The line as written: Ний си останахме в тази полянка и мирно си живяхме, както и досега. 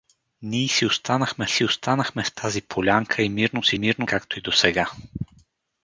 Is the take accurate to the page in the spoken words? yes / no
no